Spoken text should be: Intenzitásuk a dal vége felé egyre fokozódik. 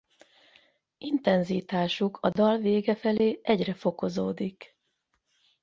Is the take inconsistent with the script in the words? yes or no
no